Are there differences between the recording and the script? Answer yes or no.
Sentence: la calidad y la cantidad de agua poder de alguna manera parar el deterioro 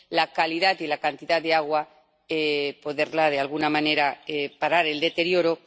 no